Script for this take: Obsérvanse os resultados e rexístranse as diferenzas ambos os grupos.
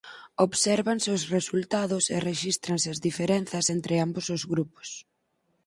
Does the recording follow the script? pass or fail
fail